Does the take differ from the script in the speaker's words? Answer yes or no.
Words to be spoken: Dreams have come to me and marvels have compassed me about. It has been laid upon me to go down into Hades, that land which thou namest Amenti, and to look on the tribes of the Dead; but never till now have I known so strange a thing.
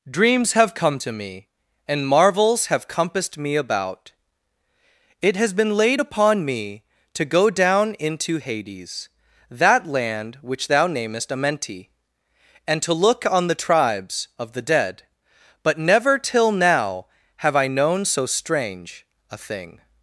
no